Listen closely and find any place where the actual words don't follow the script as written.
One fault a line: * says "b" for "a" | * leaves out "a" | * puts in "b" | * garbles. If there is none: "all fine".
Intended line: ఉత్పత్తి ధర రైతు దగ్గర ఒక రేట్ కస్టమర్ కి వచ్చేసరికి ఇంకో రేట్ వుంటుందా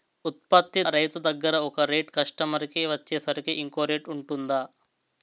* leaves out "ధర"